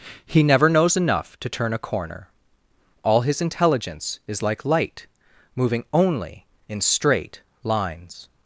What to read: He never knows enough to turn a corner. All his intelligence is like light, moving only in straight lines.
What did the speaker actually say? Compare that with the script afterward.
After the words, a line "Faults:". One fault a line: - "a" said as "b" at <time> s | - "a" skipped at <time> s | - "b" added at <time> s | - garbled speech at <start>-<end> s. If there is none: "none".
He never knows enough to turn a corner. All his intelligence is like light, moving only in straight lines.
Faults:
none